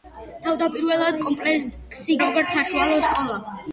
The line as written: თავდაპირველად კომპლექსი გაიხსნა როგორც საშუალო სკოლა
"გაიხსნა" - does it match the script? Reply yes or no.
no